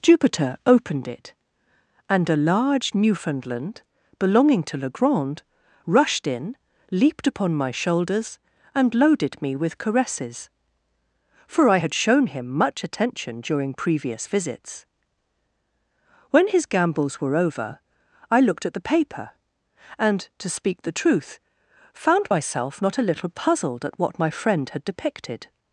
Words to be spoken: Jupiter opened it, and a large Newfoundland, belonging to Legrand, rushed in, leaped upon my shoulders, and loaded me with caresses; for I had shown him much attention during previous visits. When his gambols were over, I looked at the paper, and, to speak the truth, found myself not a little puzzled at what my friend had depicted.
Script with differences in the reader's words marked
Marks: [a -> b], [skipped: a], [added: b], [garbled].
Jupiter opened it, and a large Newfoundland, belonging to Legrand, rushed in, leaped upon my shoulders, and loaded me with caresses; for I had shown him much attention during previous visits. When his gambols were over, I looked at the paper, and, to speak the truth, found myself not a little puzzled at what my friend had depicted.